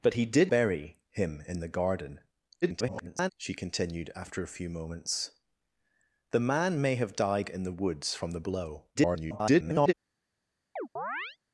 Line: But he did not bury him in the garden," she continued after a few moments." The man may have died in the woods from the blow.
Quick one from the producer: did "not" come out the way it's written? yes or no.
no